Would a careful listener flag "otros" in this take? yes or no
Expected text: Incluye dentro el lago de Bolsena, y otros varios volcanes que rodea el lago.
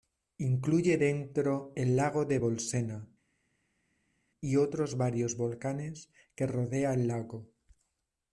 no